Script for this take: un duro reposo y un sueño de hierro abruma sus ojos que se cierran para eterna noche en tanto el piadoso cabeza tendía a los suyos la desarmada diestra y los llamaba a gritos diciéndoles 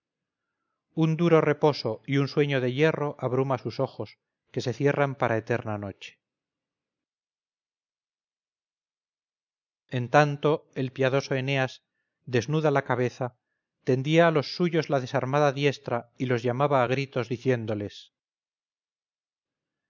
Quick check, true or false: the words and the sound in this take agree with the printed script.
false